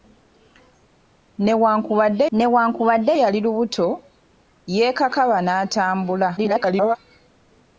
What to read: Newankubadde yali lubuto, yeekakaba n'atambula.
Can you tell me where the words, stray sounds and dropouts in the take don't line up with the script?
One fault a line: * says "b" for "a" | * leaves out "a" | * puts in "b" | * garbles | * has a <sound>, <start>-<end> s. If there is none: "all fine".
* puts in "newankubadde"
* garbles